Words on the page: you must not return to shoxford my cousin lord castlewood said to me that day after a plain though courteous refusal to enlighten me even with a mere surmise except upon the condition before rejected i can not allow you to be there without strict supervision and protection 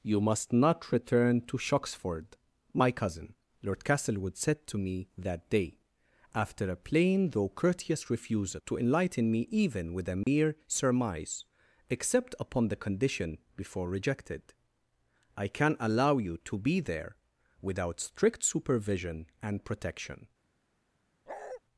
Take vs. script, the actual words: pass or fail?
fail